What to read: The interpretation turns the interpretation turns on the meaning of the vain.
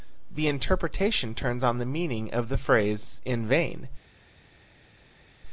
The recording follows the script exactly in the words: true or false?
false